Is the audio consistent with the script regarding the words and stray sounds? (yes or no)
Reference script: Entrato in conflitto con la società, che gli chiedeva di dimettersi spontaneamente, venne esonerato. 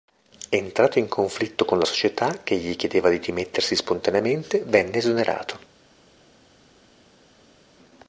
yes